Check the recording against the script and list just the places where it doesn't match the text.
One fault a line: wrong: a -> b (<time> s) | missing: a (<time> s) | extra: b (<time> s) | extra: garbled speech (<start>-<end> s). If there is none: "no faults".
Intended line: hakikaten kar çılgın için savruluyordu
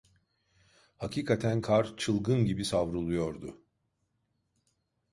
wrong: için -> gibi (2.4 s)